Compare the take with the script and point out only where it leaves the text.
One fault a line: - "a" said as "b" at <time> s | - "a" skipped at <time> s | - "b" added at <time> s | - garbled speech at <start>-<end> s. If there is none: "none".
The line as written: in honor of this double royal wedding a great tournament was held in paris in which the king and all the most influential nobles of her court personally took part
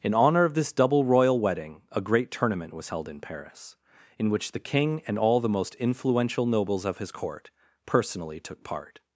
- "her" said as "his" at 7.0 s